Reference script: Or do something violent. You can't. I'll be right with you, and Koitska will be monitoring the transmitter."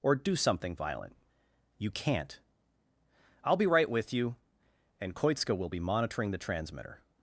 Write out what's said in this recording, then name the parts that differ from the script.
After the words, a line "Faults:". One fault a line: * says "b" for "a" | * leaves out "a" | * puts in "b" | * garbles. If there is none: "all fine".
Or do something violent. You can't. I'll be right with you, and Koitska will be monitoring the transmitter."
Faults:
all fine